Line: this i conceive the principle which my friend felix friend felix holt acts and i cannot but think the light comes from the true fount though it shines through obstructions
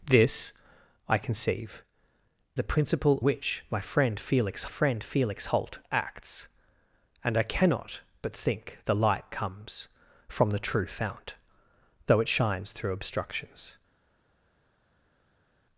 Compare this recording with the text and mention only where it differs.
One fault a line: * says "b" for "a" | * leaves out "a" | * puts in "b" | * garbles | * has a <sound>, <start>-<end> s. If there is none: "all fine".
all fine